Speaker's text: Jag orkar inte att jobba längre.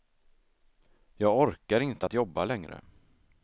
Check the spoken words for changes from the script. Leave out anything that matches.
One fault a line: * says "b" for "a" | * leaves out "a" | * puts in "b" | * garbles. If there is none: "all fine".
all fine